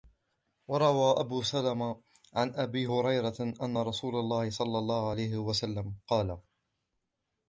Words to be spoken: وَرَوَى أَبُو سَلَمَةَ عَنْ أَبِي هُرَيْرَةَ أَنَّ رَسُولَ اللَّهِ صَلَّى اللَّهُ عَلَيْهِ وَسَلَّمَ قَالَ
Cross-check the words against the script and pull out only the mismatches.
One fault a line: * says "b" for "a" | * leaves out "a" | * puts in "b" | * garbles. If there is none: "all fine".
all fine